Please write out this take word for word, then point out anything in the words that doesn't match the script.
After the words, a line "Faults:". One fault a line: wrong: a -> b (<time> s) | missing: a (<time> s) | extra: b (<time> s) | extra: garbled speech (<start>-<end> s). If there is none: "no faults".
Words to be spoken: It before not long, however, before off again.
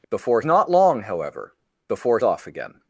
It before not long, however, before off again.
Faults:
no faults